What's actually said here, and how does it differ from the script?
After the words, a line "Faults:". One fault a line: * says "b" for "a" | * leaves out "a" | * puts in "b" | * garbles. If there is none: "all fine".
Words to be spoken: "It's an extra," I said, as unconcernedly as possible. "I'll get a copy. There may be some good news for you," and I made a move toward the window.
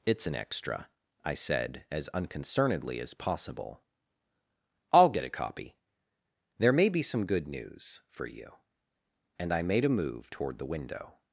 "It's an extra," I said, as unconcernedly as possible. "I'll get a copy. There may be some good news for you," and I made a move toward the window.
Faults:
all fine